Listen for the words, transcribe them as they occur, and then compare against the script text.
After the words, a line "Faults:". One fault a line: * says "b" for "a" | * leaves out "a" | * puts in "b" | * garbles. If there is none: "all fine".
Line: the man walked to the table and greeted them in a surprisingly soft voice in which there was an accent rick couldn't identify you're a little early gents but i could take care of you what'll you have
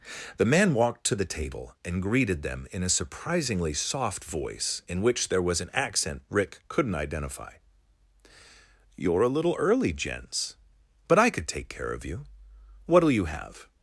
the man walked to the table and greeted them in a surprisingly soft voice in which there was an accent rick couldn't identify you're a little early gents but i could take care of you what'll you have
Faults:
all fine